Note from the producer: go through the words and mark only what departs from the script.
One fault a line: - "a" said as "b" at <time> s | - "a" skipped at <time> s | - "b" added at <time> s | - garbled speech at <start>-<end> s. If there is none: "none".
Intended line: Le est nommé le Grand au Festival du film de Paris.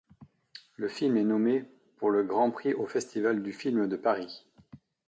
- "film" added at 0.9 s
- "pour" added at 2.0 s
- "prix" added at 2.5 s